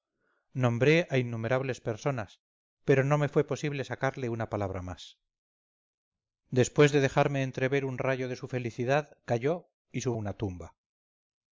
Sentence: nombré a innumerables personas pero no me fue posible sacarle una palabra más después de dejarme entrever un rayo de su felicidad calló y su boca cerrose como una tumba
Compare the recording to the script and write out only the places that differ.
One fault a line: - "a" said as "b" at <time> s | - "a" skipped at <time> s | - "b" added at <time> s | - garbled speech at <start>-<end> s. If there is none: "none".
- "boca cerrose como" skipped at 10.2 s